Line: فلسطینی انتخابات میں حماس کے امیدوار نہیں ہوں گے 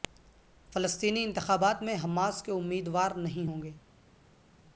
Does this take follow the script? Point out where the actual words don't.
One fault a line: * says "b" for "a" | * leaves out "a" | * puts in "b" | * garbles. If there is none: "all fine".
all fine